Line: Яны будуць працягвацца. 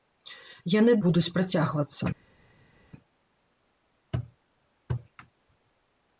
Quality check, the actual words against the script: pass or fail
pass